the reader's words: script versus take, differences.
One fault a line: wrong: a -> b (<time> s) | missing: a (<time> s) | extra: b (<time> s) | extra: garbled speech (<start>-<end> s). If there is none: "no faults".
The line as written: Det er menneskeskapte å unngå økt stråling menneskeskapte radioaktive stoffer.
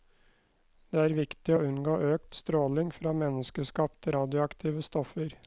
wrong: menneskeskapte -> viktig (1.1 s)
extra: fra (3.0 s)